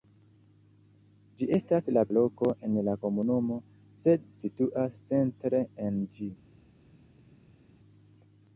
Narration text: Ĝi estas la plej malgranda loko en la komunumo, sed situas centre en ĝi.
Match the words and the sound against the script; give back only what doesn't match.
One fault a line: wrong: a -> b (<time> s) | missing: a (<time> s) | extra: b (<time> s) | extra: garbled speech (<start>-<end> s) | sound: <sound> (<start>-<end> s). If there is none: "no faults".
missing: plej malgranda (2.0 s)